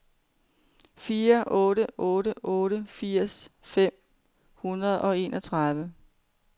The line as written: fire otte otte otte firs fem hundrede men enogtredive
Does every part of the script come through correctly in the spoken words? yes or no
no